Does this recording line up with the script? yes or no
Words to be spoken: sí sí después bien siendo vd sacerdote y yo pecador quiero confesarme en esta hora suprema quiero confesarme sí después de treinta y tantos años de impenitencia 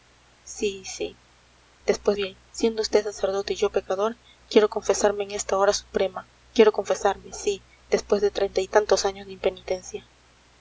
yes